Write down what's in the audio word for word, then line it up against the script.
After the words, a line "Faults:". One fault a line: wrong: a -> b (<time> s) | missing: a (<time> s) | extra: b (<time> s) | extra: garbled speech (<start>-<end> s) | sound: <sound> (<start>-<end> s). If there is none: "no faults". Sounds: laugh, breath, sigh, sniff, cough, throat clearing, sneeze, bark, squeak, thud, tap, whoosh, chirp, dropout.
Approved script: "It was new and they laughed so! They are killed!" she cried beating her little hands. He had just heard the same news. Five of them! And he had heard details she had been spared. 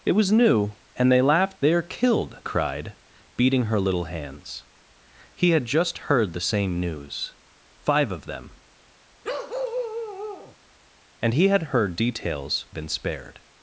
"It was new and they laughed! They are killed!" cried beating her little hands. He had just heard the same news. Five of them! And he had heard details been spared.
Faults:
missing: so (1.6 s)
missing: she (2.4 s)
sound: bark (9.2-10.6 s)
missing: she had (12.7 s)